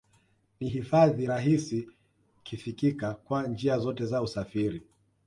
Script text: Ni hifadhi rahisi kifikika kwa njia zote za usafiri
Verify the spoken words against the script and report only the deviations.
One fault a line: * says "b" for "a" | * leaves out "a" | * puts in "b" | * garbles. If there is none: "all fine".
all fine